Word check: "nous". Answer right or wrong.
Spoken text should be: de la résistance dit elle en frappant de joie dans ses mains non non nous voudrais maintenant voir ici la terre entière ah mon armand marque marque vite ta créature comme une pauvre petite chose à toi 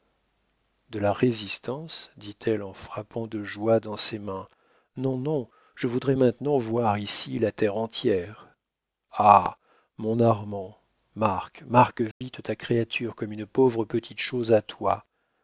wrong